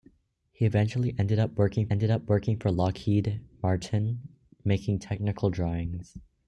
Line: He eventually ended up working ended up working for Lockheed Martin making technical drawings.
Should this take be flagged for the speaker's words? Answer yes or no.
no